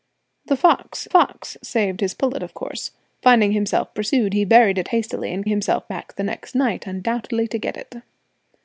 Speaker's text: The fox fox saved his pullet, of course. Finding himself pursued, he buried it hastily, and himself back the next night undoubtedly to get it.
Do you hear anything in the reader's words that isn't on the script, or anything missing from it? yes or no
no